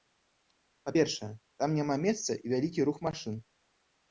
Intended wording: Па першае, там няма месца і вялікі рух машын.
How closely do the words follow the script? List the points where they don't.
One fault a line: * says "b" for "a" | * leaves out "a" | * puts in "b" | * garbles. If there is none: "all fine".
all fine